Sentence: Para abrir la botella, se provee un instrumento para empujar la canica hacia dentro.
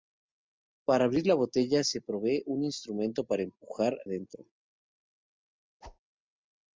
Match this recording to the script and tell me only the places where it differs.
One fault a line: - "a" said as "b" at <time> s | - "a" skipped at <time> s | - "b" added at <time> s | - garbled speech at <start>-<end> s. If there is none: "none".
- "la canica hacia" skipped at 4.0 s